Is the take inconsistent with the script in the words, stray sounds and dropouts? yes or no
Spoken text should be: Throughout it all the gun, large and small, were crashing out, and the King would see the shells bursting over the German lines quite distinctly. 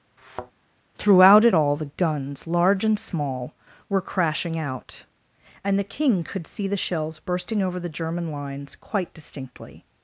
yes